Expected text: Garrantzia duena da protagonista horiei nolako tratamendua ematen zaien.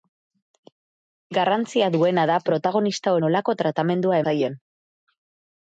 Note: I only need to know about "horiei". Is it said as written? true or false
false